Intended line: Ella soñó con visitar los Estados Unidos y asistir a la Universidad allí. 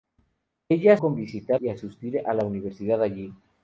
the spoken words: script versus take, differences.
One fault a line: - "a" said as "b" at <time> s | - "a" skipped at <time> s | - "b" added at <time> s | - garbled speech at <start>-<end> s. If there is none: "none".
- "soñó" skipped at 1.0 s
- "los Estados Unidos" skipped at 1.6 s